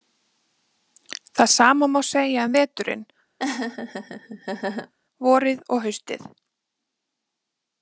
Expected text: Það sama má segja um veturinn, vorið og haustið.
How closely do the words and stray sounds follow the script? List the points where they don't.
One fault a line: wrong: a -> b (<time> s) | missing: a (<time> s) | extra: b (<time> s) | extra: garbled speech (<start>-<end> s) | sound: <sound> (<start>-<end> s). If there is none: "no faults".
sound: laugh (3.4-4.9 s)